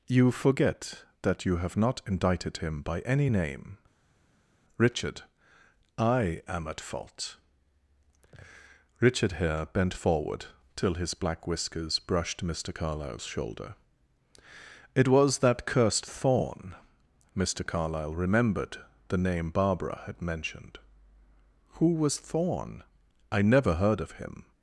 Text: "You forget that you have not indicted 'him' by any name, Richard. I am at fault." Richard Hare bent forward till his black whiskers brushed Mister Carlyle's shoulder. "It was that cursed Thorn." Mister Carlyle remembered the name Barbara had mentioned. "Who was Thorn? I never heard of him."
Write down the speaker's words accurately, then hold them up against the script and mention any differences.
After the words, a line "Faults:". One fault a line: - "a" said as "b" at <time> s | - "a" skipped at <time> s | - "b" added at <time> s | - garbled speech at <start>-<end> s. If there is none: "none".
"You forget that you have not indicted 'him' by any name, Richard. I am at fault." Richard Hare bent forward till his black whiskers brushed Mister Carlyle's shoulder. "It was that cursed Thorn." Mister Carlyle remembered the name Barbara had mentioned. "Who was Thorn? I never heard of him."
Faults:
none